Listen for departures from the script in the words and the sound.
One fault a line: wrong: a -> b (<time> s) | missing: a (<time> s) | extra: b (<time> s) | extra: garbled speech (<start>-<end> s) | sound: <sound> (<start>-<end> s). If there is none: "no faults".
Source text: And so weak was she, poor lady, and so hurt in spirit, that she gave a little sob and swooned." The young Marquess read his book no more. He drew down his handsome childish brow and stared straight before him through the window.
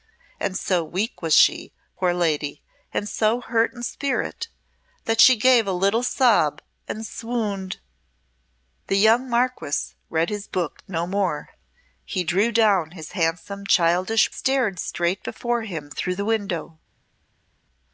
missing: brow and (14.3 s)